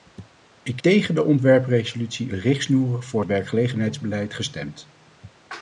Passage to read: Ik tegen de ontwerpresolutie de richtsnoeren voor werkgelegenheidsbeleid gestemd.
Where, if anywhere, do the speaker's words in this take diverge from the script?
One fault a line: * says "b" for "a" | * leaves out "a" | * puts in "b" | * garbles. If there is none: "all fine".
all fine